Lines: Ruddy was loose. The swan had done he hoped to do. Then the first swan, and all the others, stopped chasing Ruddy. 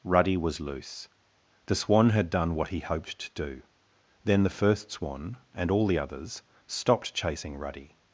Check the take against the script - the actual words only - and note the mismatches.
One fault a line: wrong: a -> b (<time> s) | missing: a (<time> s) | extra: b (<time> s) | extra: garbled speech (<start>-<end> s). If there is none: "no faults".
extra: what (2.5 s)